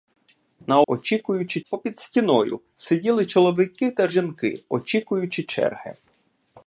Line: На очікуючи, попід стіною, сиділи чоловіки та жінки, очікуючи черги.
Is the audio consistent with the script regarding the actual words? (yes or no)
yes